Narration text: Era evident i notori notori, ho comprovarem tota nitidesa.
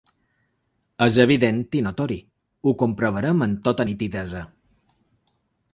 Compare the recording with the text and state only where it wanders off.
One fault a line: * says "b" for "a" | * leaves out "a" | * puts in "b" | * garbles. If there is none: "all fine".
* says "És" for "Era"
* leaves out "notori"
* puts in "amb"